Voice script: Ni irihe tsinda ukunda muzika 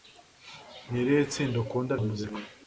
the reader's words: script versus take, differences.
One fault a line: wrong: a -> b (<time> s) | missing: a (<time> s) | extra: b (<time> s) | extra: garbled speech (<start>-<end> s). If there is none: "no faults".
no faults